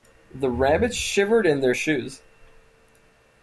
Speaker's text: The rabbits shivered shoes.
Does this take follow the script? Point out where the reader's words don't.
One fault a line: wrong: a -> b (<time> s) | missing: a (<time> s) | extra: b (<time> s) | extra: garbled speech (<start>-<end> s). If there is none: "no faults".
extra: in their (1.4 s)